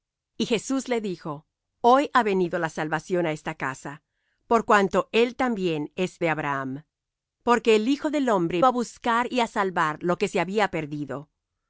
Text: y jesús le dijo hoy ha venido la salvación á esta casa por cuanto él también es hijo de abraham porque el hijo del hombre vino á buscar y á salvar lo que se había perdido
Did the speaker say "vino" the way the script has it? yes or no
no